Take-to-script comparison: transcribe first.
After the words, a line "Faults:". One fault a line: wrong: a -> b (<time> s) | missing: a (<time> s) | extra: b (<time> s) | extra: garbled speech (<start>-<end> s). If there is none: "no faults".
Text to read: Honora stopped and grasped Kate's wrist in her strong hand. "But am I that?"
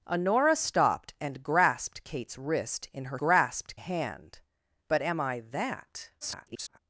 Honora stopped and grasped Kate's wrist in her grasped hand. "But am I that?" [garbled]
Faults:
wrong: strong -> grasped (3.2 s)
extra: garbled speech (6.2-6.8 s)